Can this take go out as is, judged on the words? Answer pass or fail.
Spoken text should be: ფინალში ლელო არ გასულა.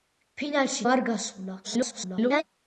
fail